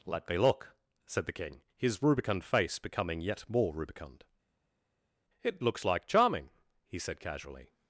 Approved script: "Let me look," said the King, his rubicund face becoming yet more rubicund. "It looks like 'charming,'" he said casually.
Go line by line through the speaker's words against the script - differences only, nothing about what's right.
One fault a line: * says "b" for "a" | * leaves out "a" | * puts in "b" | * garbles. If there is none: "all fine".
all fine